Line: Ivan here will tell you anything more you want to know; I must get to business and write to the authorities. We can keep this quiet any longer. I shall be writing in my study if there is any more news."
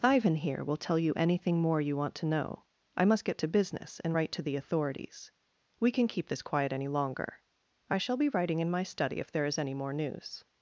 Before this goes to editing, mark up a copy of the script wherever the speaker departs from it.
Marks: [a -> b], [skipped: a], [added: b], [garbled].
Ivan here will tell you anything more you want to know; I must get to business and write to the authorities. We can keep this quiet any longer. I shall be writing in my study if there is any more news."